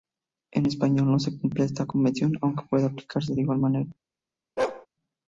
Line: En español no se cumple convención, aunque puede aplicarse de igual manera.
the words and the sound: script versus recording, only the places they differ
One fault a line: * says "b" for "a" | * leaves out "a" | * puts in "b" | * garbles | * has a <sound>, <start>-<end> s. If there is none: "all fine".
* puts in "esta"
* has a bark, 4.6-4.9 s